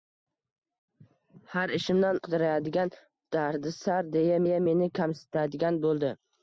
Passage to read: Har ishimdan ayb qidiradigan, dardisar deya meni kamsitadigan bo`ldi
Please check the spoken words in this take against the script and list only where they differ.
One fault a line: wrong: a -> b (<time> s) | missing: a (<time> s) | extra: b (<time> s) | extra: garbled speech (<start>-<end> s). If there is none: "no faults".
missing: ayb (2.2 s)
extra: deya (4.4 s)